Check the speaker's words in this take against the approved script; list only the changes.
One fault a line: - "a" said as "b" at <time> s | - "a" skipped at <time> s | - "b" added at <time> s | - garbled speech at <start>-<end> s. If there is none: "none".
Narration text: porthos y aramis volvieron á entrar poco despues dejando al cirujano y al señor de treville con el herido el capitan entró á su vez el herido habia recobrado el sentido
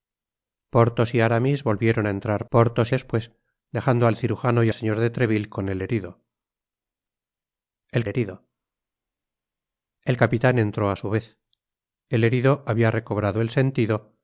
- "poco" said as "porthos" at 2.5 s
- "al" skipped at 4.7 s
- "herido el" added at 8.1 s